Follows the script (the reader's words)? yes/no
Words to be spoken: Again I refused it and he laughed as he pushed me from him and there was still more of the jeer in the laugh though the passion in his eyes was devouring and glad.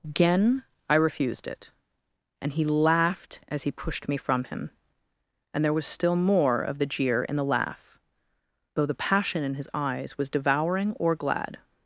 no